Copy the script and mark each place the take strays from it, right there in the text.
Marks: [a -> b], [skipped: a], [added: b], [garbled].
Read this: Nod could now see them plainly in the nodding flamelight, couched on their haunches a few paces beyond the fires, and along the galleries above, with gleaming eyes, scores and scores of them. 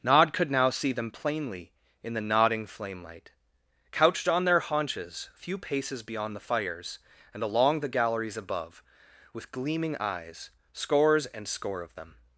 Nod could now see them plainly in the nodding flamelight, couched on their haunches a few paces beyond the fires, and along the galleries above, with gleaming eyes, scores and [scores -> score] of them.